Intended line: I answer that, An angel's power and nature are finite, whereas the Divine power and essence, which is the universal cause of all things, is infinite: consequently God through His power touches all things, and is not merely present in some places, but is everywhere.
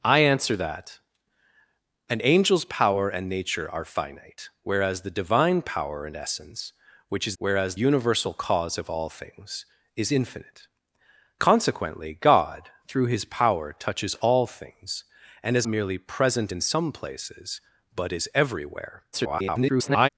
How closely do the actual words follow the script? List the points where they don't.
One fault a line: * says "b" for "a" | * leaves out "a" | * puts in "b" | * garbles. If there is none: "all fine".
* says "whereas" for "the"
* leaves out "not"
* garbles